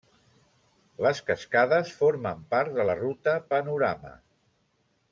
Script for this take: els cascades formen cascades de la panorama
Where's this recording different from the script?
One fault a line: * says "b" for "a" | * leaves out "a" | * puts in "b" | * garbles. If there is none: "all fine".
* says "les" for "els"
* says "part" for "cascades"
* puts in "ruta"